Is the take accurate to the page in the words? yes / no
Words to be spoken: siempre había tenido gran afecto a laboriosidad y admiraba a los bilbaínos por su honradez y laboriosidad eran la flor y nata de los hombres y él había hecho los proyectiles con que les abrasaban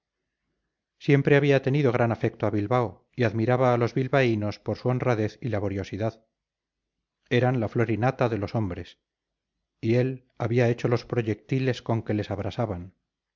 no